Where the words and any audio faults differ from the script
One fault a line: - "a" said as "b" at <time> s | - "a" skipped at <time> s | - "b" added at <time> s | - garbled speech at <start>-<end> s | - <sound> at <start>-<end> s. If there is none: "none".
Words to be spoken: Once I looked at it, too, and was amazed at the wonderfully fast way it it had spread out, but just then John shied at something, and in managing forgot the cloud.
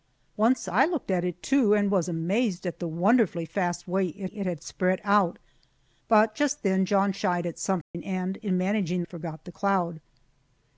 - dropout at 7.8-7.9 s